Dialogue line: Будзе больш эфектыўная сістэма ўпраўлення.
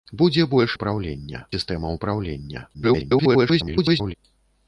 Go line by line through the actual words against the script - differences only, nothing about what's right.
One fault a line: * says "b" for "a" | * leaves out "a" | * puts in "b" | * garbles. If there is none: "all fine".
* says "ўпраўлення" for "эфектыўная"
* garbles